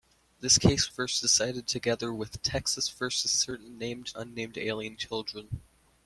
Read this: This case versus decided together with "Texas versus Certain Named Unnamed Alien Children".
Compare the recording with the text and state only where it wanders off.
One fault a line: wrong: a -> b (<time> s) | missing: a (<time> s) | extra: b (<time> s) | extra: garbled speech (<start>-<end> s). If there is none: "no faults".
no faults